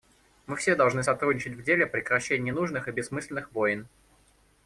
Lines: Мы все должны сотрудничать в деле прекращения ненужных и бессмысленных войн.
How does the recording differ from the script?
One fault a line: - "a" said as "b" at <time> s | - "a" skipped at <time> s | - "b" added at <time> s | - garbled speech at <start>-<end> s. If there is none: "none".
none